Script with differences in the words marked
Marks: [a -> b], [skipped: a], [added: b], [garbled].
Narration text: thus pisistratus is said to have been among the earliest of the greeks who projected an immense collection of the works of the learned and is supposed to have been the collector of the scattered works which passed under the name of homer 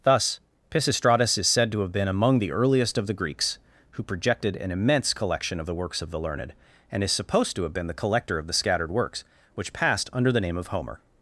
thus pisistratus is said to have been among the earliest of the greeks who projected an immense collection of the works of the learned and is supposed to have been the collector of the scattered works which passed under the name of homer